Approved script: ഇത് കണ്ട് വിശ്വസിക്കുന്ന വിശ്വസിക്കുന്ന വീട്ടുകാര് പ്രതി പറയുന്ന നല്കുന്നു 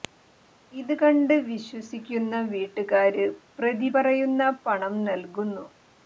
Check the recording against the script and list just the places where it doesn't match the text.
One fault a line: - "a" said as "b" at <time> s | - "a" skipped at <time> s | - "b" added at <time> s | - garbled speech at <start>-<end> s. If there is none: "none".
- "വിശ്വസിക്കുന്ന" skipped at 2.4 s
- "പണം" added at 4.6 s